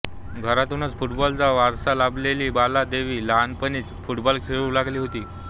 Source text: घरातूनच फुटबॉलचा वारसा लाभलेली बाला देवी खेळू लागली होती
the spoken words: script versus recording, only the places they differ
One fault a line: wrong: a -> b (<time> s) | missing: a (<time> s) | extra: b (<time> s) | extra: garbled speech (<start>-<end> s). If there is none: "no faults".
extra: लहानपणीच फुटबॉल (3.3 s)